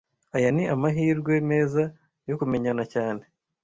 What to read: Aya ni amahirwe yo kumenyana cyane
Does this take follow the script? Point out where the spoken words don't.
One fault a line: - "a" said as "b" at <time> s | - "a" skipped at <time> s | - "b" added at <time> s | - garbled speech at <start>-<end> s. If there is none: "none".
- "meza" added at 1.5 s